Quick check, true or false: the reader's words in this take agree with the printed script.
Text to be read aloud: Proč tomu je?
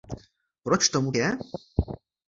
true